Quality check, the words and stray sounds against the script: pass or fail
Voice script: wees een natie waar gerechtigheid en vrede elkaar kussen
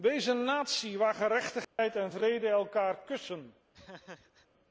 fail